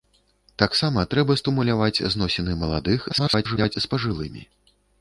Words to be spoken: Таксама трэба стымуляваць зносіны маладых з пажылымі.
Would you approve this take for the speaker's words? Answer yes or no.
no